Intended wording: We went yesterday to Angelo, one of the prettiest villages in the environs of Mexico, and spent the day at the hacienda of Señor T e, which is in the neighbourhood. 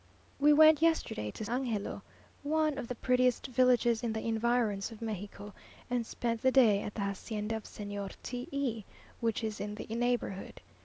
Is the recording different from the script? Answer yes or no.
no